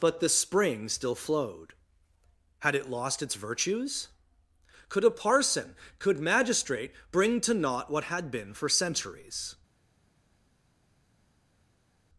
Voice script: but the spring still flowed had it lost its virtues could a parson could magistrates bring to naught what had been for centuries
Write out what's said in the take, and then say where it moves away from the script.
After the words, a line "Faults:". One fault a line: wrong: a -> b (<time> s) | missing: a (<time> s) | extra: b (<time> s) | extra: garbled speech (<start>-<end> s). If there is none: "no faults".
but the spring still flowed had it lost its virtues could a parson could magistrate bring to naught what had been for centuries
Faults:
wrong: magistrates -> magistrate (6.2 s)